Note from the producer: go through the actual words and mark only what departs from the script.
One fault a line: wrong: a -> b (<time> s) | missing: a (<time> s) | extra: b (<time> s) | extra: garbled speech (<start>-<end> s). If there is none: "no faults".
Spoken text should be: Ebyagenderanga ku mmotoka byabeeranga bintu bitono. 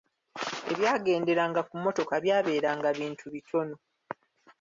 no faults